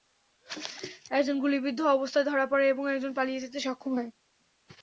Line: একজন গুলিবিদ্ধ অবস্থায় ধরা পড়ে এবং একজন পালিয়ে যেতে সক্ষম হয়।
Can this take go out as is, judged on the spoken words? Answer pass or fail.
pass